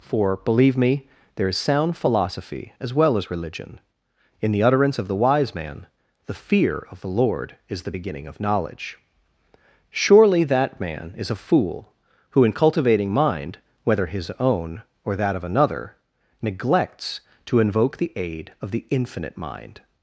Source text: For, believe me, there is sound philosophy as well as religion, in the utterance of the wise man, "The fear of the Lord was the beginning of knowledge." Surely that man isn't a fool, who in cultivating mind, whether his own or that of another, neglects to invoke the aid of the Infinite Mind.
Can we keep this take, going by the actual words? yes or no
no